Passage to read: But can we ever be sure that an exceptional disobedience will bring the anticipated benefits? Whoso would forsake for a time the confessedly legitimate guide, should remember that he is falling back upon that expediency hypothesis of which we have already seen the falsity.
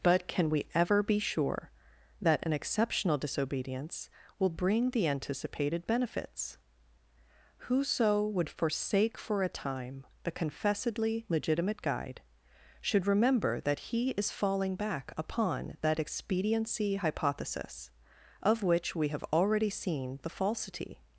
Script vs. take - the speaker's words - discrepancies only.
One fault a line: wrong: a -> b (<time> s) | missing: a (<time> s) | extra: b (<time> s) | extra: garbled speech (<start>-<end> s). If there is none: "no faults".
no faults